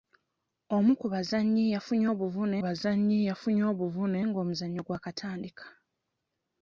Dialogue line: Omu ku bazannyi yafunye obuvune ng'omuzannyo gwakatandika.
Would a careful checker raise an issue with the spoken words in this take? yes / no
yes